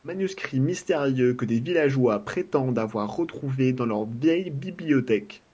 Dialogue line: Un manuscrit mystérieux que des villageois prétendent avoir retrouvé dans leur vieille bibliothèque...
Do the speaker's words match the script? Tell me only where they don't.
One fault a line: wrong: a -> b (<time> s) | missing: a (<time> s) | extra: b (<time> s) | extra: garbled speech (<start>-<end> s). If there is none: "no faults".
no faults